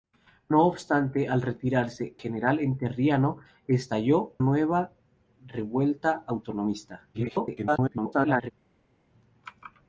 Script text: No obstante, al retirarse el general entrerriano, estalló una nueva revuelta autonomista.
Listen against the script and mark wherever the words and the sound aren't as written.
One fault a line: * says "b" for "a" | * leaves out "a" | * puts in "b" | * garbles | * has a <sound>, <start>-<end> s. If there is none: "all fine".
* leaves out "el"
* leaves out "una"
* garbles